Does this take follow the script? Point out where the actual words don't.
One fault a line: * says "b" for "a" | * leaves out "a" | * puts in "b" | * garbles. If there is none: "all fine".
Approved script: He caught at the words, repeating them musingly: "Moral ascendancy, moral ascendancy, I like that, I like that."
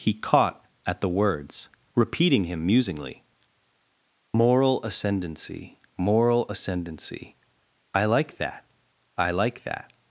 * says "him" for "them"